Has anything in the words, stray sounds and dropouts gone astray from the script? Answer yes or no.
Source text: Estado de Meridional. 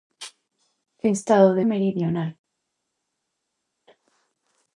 no